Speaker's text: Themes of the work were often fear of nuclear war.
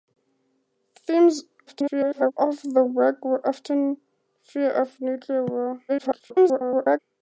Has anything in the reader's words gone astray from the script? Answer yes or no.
yes